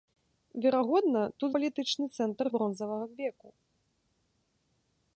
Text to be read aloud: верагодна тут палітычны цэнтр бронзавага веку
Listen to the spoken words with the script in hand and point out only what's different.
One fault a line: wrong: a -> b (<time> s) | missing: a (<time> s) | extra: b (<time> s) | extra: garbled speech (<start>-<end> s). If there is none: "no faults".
no faults